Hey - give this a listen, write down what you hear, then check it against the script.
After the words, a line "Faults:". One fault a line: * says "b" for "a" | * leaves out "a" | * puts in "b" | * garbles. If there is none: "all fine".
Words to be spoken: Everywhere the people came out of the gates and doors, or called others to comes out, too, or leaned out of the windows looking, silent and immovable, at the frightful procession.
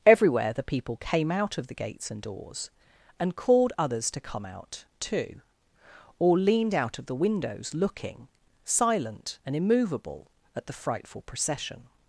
Everywhere the people came out of the gates and doors, and called others to come out, too, or leaned out of the windows looking, silent and immovable, at the frightful procession.
Faults:
* says "and" for "or"
* says "come" for "comes"